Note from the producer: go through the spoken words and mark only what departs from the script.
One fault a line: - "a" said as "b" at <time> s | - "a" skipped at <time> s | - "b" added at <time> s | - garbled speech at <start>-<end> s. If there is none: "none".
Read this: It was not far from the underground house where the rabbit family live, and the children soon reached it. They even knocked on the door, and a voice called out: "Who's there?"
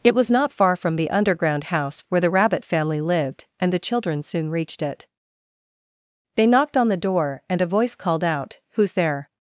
- "live" said as "lived" at 3.0 s
- "even" skipped at 6.5 s